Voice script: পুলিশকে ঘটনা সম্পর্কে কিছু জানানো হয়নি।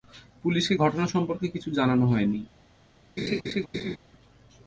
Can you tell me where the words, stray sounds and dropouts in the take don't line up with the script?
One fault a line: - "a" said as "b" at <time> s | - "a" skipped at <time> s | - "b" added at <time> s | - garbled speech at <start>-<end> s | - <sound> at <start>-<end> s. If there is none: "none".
- laugh at 3.2-4.0 s